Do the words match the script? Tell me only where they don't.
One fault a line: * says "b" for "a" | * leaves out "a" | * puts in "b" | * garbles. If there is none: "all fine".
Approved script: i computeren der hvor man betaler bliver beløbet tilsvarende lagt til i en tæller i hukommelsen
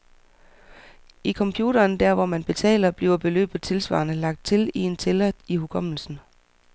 all fine